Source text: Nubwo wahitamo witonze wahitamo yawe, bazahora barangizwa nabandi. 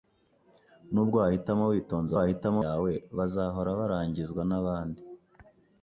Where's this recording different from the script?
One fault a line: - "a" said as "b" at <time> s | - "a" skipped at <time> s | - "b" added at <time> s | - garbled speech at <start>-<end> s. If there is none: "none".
none